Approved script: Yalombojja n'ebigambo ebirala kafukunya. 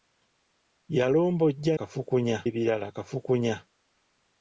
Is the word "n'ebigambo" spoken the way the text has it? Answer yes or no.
no